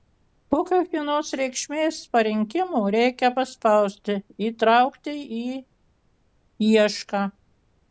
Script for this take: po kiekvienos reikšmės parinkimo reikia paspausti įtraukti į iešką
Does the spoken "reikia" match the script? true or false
true